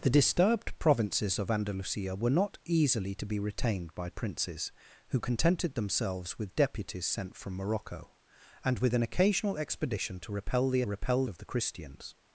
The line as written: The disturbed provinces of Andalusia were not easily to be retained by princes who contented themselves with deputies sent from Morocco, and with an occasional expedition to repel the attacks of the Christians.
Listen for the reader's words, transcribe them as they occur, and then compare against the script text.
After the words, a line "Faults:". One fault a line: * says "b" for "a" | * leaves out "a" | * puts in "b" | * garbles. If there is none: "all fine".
The disturbed provinces of Andalusia were not easily to be retained by princes who contented themselves with deputies sent from Morocco, and with an occasional expedition to repel the repel of the Christians.
Faults:
* says "repel" for "attacks"